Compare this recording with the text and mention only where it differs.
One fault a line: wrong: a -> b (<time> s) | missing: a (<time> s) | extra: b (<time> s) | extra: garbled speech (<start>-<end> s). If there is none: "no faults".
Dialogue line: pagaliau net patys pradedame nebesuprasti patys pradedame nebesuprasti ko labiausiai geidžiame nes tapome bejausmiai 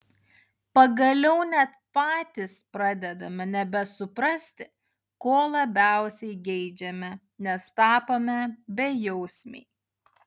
missing: patys pradedame nebesuprasti (4.7 s)